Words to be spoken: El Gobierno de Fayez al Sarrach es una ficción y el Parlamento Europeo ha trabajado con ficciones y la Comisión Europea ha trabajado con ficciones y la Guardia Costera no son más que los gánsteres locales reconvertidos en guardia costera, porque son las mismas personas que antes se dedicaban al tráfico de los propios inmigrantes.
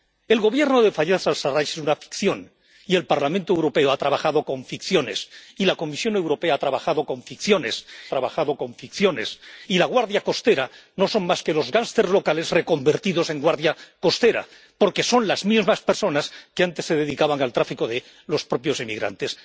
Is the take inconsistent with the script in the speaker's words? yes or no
yes